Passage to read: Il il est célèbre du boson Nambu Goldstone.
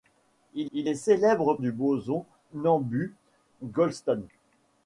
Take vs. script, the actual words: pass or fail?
pass